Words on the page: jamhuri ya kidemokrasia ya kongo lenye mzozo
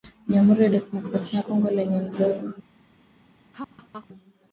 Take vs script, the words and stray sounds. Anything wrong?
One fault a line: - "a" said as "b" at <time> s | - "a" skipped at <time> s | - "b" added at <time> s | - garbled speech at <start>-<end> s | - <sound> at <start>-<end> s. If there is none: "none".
- laugh at 3.5-4.1 s